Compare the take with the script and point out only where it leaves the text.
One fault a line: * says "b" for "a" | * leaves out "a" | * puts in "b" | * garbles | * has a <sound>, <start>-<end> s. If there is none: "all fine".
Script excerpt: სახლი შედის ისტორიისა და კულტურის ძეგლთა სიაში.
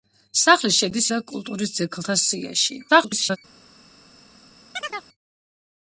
* leaves out "ისტორიისა"
* garbles
* has a chirp, 4.7-5.1 s